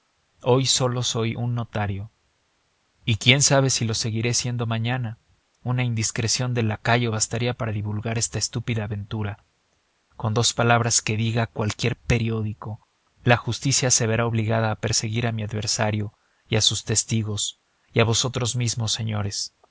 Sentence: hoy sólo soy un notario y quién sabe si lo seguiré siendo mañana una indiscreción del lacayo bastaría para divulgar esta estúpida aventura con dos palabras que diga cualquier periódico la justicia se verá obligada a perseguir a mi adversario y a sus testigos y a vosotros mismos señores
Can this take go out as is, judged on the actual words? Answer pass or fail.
pass